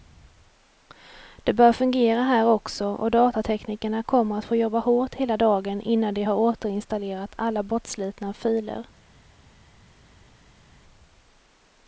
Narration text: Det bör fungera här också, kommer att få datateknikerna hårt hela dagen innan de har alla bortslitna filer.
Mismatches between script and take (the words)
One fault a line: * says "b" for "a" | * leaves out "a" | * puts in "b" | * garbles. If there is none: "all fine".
* puts in "och datateknikerna"
* says "jobba" for "datateknikerna"
* puts in "återinstallerat"